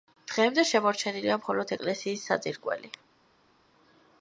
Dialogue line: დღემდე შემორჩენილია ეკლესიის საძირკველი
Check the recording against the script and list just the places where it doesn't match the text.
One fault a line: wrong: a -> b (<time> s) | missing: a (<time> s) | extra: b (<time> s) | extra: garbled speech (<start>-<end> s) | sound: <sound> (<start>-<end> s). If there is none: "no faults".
extra: მხოლოდ (1.4 s)